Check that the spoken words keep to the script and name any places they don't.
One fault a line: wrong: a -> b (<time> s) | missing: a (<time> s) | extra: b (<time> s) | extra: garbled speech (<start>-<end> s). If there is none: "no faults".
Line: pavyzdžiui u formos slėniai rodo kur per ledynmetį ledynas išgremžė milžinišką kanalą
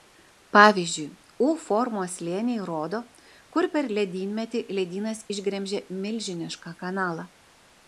no faults